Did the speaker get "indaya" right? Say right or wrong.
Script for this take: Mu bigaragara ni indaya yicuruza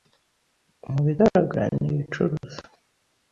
wrong